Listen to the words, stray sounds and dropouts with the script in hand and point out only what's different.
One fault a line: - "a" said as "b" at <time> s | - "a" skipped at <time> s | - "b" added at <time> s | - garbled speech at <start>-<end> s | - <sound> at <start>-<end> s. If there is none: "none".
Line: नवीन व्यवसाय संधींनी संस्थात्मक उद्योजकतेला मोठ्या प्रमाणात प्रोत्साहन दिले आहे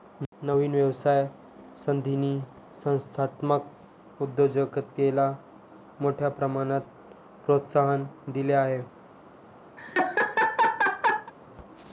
- laugh at 9.8-11.3 s